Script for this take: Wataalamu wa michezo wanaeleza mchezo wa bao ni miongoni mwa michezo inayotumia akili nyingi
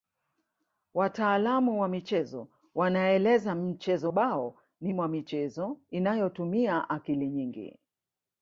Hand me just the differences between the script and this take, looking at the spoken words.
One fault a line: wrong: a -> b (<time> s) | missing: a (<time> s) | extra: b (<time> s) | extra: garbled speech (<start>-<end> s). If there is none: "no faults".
missing: wa (4.1 s)
missing: miongoni (4.9 s)